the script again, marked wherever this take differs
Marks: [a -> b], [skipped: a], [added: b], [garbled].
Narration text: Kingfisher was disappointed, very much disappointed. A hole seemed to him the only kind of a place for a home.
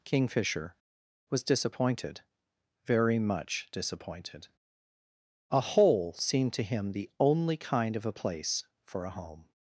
Kingfisher was disappointed, very much disappointed. A hole seemed to him the only kind of a place for a home.